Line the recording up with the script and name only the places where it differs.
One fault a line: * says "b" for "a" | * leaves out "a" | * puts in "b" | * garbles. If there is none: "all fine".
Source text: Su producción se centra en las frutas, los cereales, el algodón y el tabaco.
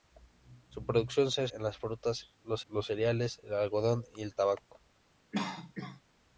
* leaves out "centra"
* puts in "los"